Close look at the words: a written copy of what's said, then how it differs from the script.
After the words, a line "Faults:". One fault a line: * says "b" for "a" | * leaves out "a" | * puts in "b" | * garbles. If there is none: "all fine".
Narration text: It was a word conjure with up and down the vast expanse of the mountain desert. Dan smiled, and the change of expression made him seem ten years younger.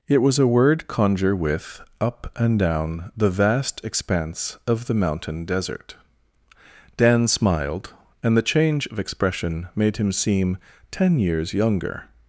It was a word conjure with up and down the vast expanse of the mountain desert. Dan smiled, and the change of expression made him seem ten years younger.
Faults:
all fine